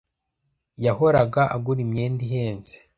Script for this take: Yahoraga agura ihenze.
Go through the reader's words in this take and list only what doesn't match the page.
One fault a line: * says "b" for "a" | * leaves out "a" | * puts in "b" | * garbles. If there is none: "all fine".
* puts in "imyenda"